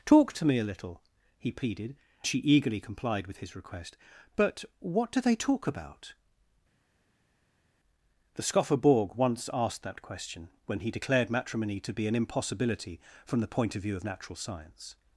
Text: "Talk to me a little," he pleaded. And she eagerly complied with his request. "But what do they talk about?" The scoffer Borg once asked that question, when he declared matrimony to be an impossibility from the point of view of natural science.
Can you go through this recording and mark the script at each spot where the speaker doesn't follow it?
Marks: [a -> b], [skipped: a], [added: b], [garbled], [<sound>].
"Talk to me a little," he pleaded. [skipped: And] she eagerly complied with his request. "But what do they talk about?" The scoffer Borg once asked that question, when he declared matrimony to be an impossibility from the point of view of natural science.